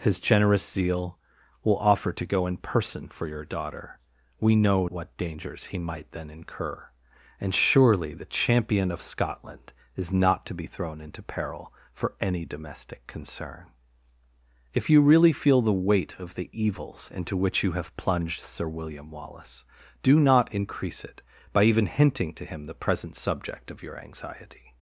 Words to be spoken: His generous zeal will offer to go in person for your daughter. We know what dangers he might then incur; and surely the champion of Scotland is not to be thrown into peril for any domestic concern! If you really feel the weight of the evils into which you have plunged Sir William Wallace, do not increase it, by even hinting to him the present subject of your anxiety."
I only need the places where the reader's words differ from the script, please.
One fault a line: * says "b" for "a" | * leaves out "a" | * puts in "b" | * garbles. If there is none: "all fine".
all fine